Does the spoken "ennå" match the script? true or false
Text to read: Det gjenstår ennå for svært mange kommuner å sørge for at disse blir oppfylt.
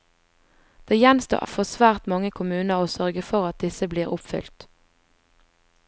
false